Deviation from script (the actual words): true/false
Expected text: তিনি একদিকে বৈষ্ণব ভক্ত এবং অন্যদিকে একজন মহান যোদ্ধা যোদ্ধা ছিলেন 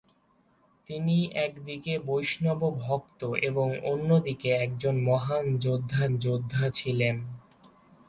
false